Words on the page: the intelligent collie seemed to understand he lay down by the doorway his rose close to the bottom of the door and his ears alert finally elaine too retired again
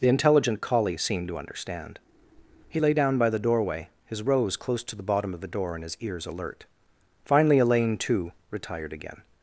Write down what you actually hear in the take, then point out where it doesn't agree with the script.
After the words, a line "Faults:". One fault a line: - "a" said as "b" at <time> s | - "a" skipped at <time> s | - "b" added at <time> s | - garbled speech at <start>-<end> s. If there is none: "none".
the intelligent collie seemed to understand he lay down by the doorway his rose close to the bottom of the door and his ears alert finally elaine too retired again
Faults:
none